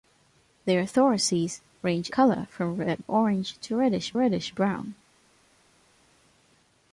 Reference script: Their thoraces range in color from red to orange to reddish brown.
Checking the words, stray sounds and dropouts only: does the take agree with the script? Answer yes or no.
no